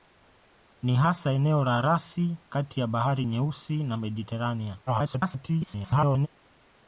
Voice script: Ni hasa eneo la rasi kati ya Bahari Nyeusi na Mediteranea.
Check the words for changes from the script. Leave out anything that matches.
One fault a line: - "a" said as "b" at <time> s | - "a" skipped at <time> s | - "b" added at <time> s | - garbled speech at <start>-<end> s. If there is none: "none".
- garbled speech at 4.9-6.3 s